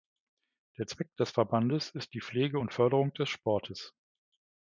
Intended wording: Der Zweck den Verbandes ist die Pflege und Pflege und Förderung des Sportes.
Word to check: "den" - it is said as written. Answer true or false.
false